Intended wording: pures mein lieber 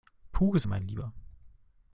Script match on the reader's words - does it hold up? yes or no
yes